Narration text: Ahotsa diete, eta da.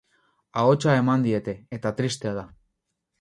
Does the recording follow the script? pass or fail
fail